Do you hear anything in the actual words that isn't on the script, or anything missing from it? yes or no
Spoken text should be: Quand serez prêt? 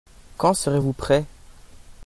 yes